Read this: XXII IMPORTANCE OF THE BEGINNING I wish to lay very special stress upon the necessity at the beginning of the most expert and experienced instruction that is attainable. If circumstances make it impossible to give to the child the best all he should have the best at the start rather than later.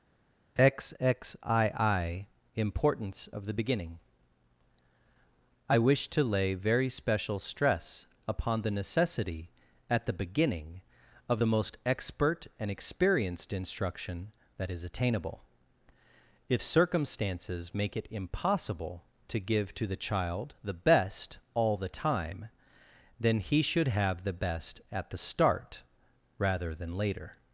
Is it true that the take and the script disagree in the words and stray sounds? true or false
true